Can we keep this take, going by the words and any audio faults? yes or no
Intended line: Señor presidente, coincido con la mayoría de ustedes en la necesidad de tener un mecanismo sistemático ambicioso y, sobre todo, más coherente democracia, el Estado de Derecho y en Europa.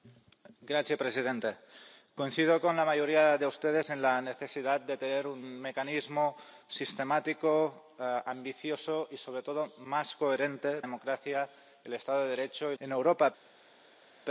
yes